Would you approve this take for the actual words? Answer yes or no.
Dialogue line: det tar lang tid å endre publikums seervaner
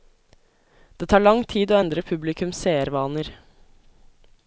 yes